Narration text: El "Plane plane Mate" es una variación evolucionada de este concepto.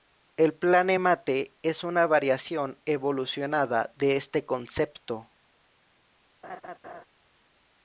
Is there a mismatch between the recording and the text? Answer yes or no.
yes